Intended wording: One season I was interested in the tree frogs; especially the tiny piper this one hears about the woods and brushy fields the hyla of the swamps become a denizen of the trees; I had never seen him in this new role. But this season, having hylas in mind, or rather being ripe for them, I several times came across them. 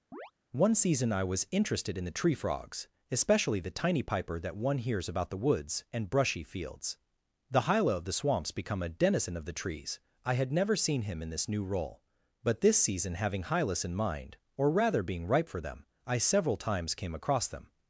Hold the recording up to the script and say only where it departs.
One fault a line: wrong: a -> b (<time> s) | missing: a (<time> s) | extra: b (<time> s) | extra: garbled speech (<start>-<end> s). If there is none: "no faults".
wrong: this -> that (4.4 s)